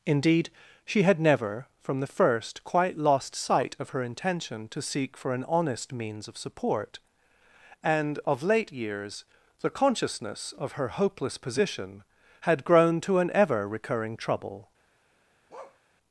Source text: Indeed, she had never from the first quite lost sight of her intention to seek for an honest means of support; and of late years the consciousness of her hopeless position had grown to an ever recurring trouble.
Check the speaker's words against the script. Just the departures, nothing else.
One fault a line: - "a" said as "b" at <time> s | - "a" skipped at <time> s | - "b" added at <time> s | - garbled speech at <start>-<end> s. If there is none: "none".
none